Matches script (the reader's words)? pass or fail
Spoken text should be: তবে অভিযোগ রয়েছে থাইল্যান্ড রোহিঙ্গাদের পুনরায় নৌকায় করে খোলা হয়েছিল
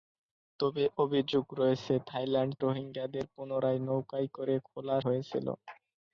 pass